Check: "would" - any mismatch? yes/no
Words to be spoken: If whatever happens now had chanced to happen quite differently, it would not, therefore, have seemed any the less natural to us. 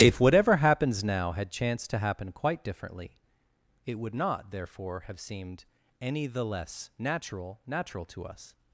no